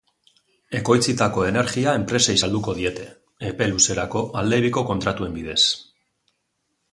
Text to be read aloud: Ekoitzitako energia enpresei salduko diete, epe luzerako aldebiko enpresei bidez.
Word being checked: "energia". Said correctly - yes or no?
yes